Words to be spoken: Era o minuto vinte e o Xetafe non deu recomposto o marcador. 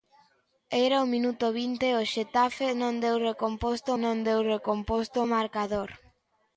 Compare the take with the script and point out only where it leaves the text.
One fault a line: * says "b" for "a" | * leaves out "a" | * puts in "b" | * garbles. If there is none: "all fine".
* puts in "non deu recomposto"